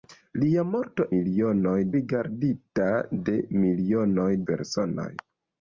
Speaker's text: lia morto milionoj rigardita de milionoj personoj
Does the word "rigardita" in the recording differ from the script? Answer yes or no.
no